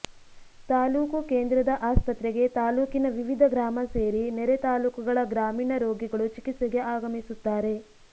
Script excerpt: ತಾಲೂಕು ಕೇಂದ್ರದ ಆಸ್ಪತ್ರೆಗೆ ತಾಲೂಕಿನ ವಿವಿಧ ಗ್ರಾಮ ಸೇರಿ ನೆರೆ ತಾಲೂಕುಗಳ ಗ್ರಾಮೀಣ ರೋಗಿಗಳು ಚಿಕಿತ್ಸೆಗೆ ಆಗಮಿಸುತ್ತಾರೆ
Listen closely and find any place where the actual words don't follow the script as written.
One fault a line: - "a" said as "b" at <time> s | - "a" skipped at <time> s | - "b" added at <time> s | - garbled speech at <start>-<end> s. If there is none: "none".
none